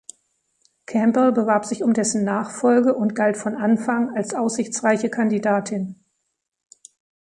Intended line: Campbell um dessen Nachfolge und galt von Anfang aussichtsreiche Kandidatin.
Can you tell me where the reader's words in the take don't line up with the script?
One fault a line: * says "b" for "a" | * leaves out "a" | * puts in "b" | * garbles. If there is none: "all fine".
* puts in "bewarb sich"
* puts in "als"